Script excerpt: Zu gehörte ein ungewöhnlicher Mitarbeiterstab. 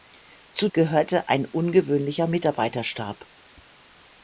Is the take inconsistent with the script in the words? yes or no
no